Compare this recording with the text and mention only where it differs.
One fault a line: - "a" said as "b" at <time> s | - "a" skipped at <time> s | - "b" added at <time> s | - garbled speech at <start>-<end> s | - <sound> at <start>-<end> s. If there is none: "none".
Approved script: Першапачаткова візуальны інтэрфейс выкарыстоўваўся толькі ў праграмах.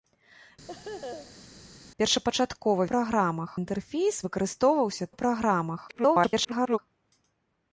- laugh at 0.7-1.5 s
- "візуальны" said as "праграмах" at 2.9 s
- "толькі" skipped at 5.0 s
- garbled speech at 5.9-6.8 s